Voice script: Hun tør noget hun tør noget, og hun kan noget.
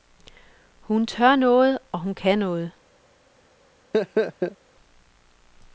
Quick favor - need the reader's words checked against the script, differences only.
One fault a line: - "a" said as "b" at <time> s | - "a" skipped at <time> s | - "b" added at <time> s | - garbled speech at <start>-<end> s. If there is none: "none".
- "hun tør noget" skipped at 1.8 s